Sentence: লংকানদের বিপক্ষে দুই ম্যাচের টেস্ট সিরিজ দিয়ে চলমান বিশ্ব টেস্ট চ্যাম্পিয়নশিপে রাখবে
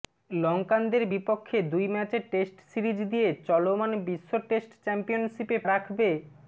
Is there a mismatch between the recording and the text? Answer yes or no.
no